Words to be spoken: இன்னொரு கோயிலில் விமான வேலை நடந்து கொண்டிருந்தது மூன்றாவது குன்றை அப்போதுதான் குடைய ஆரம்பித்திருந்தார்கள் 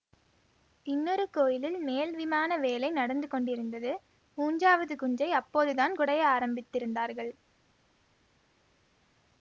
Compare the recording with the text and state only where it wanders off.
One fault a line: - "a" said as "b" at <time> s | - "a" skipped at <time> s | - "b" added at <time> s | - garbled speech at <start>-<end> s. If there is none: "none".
- "மேல்" added at 1.8 s